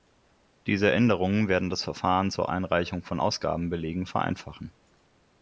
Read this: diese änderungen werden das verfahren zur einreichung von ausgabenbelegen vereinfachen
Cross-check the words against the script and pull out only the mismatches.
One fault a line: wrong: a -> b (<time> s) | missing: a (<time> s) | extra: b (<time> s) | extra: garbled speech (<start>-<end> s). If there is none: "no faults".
no faults